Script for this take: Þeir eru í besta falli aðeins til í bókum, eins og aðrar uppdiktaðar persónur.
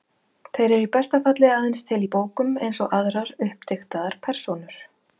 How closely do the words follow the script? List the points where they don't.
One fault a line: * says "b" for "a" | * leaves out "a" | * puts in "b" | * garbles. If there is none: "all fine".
all fine